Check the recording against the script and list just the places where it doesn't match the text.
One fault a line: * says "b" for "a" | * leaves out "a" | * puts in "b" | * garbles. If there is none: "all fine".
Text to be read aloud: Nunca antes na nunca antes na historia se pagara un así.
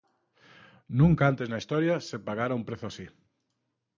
* leaves out "nunca antes na"
* puts in "prezo"